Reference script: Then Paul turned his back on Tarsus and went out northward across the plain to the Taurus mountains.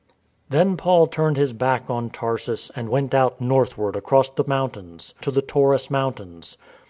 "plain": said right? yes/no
no